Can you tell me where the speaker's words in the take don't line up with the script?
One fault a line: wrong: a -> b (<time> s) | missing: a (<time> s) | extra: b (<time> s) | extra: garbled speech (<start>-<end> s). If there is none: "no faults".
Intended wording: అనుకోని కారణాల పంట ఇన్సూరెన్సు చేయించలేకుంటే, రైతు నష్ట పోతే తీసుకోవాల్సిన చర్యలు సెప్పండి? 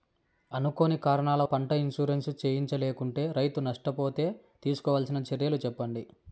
no faults